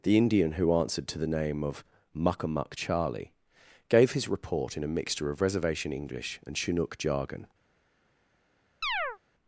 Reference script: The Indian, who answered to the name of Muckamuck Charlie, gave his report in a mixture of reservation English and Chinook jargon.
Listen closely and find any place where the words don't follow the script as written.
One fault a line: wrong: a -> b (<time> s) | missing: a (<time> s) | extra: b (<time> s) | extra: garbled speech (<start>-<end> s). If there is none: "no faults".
no faults